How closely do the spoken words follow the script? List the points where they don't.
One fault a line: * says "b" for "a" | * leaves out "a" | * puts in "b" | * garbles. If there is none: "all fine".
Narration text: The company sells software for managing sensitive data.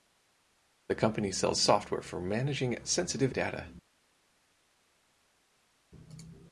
all fine